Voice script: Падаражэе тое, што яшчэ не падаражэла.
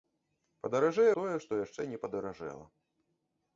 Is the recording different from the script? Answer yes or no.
no